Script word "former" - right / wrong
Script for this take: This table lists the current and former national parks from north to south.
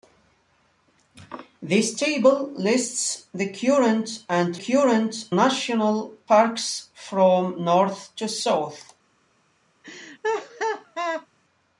wrong